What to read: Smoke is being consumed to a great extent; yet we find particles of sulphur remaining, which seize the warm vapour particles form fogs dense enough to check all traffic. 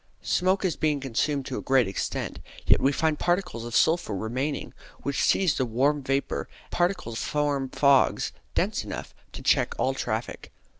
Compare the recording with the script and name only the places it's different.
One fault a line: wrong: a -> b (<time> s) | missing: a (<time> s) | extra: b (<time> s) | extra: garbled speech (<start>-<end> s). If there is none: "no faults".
no faults